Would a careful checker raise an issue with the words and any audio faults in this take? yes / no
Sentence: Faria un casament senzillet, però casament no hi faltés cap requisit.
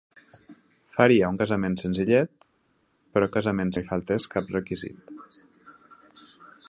no